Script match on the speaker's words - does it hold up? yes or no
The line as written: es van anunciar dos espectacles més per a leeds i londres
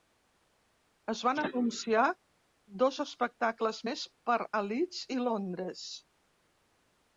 yes